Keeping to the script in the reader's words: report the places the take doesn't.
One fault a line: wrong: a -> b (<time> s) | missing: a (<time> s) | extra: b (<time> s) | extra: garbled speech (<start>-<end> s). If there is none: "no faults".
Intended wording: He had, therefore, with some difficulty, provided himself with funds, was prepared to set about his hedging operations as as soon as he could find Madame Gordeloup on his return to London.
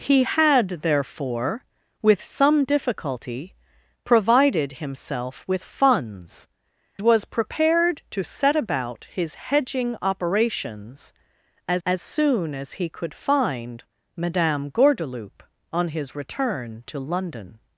no faults